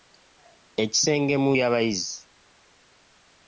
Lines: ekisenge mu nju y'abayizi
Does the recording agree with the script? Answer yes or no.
no